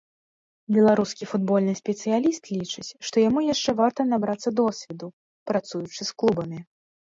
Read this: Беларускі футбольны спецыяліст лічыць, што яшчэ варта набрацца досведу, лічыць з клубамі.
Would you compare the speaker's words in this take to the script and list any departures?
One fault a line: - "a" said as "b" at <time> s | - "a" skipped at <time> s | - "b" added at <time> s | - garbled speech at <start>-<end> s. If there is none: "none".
- "яму" added at 3.3 s
- "лічыць" said as "працуючы" at 5.5 s